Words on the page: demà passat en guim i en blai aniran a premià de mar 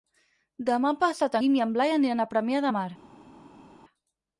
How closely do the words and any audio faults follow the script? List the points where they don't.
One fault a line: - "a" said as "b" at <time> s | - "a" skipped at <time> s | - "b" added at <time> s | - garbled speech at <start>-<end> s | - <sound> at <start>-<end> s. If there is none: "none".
- "en" skipped at 1.4 s